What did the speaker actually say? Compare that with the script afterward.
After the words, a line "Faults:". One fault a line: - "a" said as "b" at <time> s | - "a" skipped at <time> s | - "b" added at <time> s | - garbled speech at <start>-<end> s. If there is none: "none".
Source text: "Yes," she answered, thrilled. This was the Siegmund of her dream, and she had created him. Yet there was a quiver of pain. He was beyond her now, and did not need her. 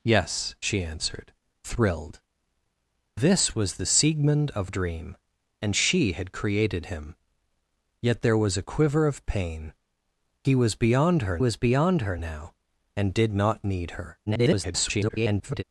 "Yes," she answered, thrilled. This was the Siegmund of dream, and she had created him. Yet there was a quiver of pain. He was beyond her was beyond her now, and did not need her. [garbled]
Faults:
- "her" skipped at 4.7 s
- "was beyond her" added at 11.4 s
- garbled speech at 14.3-15.6 s